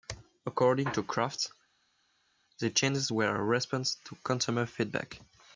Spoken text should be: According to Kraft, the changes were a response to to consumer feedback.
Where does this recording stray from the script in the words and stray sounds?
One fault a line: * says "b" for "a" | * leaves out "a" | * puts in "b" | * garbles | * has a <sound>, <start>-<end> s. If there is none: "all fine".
* leaves out "to"